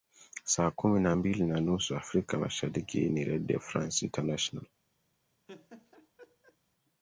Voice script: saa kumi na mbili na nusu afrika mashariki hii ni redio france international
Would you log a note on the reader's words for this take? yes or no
no